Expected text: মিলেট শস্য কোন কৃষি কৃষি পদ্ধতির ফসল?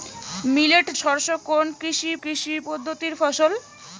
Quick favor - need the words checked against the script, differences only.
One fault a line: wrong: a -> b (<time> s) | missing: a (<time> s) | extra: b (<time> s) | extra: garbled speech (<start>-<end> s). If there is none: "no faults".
no faults